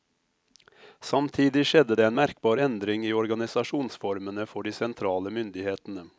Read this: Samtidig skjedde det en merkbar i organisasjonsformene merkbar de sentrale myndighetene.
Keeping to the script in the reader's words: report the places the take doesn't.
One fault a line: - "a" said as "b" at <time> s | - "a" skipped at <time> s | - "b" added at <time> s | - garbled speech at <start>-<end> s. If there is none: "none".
- "endring" added at 2.6 s
- "merkbar" said as "for" at 4.5 s